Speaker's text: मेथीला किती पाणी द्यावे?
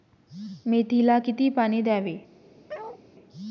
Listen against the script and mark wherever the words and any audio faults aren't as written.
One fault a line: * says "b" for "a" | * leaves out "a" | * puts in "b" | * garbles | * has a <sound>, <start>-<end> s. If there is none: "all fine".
* has a bark, 2.7-3.0 s